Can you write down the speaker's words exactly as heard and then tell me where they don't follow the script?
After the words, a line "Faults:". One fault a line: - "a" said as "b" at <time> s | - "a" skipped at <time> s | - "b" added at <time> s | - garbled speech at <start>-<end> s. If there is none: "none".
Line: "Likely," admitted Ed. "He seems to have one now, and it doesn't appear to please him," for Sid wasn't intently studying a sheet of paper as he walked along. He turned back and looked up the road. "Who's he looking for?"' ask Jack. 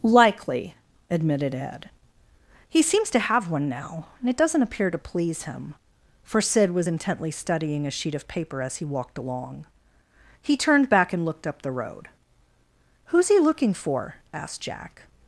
"Likely," admitted Ed. "He seems to have one now, and it doesn't appear to please him," for Sid was intently studying a sheet of paper as he walked along. He turned back and looked up the road. "Who's he looking for?"' asked Jack.
Faults:
- "wasn't" said as "was" at 6.7 s
- "ask" said as "asked" at 14.3 s